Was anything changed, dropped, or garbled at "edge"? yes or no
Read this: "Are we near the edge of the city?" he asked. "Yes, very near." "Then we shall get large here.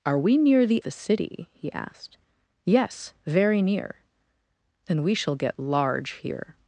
yes